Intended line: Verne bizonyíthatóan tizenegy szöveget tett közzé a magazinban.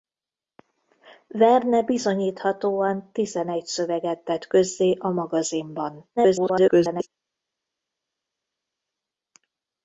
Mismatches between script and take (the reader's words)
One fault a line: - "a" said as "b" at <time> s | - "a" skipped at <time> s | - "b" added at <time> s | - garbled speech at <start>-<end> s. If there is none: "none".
- garbled speech at 6.2-7.1 s